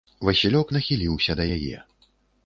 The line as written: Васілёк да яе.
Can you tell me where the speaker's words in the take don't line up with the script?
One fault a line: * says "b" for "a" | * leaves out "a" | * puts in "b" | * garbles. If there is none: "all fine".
* puts in "нахіліўся"